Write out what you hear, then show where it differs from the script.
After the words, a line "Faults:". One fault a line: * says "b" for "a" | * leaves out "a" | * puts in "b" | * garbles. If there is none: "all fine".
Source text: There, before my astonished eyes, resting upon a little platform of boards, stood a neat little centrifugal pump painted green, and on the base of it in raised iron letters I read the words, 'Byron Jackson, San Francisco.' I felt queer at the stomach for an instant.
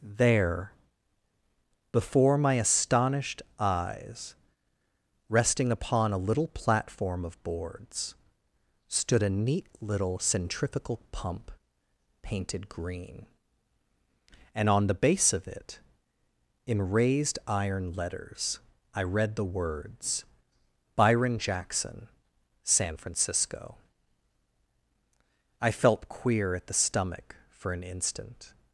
There, before my astonished eyes, resting upon a little platform of boards, stood a neat little centrifugal pump painted green, and on the base of it in raised iron letters I read the words, 'Byron Jackson, San Francisco.' I felt queer at the stomach for an instant.
Faults:
all fine